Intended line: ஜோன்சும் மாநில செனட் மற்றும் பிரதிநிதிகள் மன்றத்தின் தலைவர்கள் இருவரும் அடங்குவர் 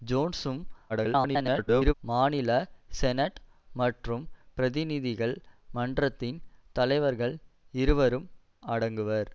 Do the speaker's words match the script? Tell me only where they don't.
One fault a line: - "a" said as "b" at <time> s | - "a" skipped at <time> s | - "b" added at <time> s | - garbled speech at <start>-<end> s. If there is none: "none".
- garbled speech at 0.9-1.9 s